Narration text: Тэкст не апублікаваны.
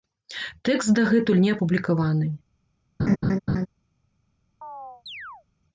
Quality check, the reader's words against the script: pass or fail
fail